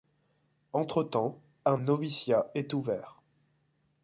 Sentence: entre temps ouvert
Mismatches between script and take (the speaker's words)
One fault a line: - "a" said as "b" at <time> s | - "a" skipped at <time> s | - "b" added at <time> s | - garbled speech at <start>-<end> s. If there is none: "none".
- "un noviciat est" added at 1.6 s